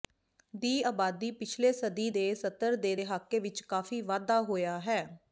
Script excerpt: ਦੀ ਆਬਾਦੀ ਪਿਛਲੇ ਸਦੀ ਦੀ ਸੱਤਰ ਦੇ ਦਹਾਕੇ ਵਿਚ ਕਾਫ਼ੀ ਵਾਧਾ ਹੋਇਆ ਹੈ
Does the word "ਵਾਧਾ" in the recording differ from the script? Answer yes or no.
no